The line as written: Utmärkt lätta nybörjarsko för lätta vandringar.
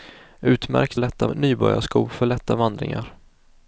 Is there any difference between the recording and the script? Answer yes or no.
no